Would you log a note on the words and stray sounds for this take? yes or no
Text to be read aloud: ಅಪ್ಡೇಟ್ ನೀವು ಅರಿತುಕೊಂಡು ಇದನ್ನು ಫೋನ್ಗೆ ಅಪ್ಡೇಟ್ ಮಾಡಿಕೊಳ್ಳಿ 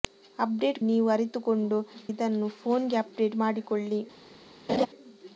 yes